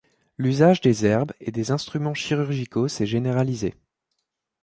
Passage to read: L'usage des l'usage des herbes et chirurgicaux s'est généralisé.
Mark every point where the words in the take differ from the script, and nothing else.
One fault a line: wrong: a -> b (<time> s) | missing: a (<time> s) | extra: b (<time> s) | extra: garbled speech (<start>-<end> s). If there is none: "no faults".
wrong: l'usage -> herbes et (1.1 s)
wrong: herbes et -> instruments (1.7 s)